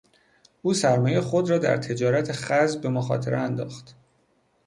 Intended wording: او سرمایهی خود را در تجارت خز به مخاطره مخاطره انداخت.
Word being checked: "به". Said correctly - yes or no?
yes